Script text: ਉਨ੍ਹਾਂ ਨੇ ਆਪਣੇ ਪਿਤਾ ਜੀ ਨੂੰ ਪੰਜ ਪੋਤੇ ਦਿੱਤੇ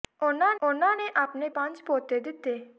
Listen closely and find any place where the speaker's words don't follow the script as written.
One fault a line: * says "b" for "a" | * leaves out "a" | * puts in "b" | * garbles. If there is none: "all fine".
* puts in "ਉਨ੍ਹਾਂ"
* leaves out "ਪਿਤਾ ਜੀ ਨੂੰ"